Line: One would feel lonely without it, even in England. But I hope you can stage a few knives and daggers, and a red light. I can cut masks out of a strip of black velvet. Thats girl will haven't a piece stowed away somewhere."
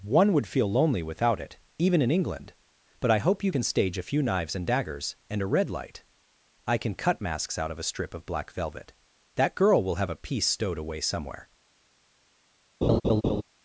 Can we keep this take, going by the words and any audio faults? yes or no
no